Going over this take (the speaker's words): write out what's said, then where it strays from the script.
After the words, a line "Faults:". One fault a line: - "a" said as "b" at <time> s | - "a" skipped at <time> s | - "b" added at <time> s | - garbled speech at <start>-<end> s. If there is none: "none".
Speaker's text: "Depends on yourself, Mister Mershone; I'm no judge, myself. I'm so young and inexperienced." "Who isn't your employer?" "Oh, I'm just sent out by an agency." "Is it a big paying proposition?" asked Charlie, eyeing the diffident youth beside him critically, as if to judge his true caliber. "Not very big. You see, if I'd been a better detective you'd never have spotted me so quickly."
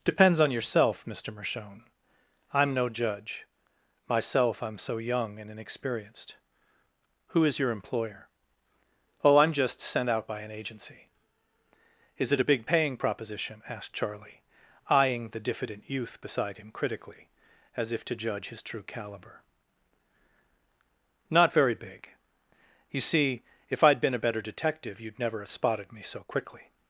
"Depends on yourself, Mister Mershone; I'm no judge, myself. I'm so young and inexperienced." "Who is your employer?" "Oh, I'm just sent out by an agency." "Is it a big paying proposition?" asked Charlie, eyeing the diffident youth beside him critically, as if to judge his true caliber. "Not very big. You see, if I'd been a better detective you'd never have spotted me so quickly."
Faults:
- "isn't" said as "is" at 7.5 s